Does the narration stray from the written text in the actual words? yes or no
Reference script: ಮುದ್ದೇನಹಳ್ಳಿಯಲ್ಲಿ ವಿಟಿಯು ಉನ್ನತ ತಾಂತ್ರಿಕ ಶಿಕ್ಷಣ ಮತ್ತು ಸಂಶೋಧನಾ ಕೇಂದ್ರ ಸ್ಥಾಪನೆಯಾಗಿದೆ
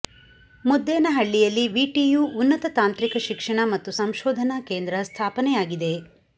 no